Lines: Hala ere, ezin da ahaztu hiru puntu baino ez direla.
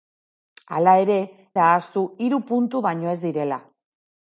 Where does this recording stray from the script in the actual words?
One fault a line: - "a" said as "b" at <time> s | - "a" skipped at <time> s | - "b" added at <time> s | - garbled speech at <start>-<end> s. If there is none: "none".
- "ezin" skipped at 1.2 s